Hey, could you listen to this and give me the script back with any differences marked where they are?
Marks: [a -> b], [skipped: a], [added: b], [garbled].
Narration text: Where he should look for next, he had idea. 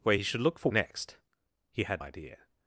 Where he should look for next, he had idea.